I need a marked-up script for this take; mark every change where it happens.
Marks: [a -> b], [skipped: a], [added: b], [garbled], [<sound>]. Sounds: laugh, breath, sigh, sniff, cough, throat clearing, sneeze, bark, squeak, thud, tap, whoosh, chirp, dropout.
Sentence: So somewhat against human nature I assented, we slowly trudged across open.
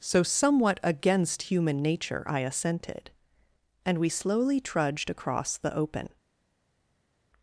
So somewhat against human nature I assented, [added: and] we slowly trudged across [added: the] open.